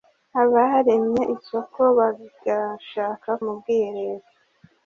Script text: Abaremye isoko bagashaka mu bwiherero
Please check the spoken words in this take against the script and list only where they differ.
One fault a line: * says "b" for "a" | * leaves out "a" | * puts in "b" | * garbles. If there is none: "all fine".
all fine